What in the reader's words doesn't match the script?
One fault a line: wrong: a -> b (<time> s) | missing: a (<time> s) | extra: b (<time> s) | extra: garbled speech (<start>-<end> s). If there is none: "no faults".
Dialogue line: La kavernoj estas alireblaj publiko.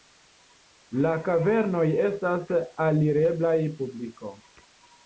no faults